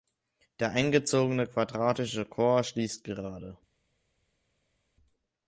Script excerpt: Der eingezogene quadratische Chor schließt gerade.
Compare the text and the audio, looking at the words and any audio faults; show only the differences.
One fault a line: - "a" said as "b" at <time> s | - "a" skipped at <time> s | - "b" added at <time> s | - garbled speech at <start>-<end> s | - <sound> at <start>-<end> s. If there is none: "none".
none